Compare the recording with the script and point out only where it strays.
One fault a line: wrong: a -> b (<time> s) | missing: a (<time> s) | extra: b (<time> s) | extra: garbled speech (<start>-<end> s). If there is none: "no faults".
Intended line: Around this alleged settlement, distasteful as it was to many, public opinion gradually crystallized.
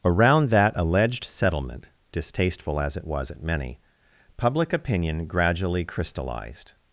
wrong: this -> that (0.5 s)
wrong: to -> at (3.3 s)